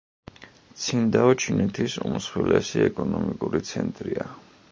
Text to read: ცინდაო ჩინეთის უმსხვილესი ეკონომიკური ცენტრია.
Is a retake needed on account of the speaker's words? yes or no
no